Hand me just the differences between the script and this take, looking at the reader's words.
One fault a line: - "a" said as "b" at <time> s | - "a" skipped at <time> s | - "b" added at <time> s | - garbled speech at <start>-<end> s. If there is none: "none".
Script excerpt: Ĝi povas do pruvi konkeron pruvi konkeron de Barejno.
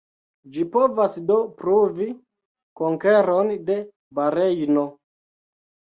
- "pruvi konkeron" skipped at 3.5 s